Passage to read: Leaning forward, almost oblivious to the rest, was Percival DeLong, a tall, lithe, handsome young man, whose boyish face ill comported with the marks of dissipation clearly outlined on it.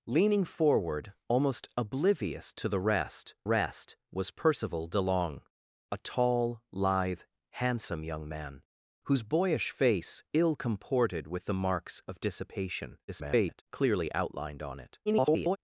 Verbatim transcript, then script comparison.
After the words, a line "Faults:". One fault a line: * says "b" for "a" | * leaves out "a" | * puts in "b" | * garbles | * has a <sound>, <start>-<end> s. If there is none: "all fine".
Leaning forward, almost oblivious to the rest rest, was Percival DeLong, a tall, lithe, handsome young man, whose boyish face ill comported with the marks of dissipation [garbled] clearly outlined on it. [garbled]
Faults:
* puts in "rest"
* garbles
* garbles